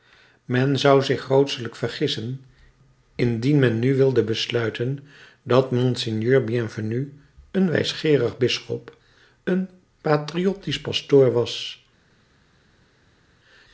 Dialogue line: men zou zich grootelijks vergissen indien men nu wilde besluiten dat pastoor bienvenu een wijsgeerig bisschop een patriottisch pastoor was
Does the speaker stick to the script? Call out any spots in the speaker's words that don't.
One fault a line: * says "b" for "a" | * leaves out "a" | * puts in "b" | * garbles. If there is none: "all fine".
* says "monseigneur" for "pastoor"